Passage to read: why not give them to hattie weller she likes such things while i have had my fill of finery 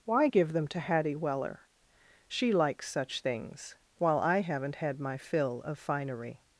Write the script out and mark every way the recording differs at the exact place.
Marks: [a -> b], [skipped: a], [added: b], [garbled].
why [skipped: not] give them to hattie weller she likes such things while i [have -> haven't] had my fill of finery